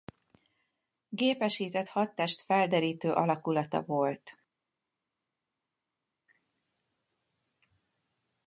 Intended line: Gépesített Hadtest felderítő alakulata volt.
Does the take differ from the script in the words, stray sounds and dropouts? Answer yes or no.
no